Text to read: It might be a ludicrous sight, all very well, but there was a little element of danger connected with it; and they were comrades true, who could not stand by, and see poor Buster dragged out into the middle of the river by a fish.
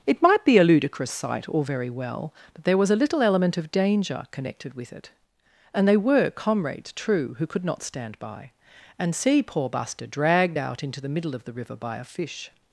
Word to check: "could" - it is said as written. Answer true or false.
true